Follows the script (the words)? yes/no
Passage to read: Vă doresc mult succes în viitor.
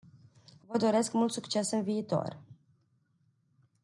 yes